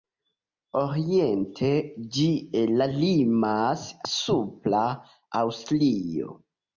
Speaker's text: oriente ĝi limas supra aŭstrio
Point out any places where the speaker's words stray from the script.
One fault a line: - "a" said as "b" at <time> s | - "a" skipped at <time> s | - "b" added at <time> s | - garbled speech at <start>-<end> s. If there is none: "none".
none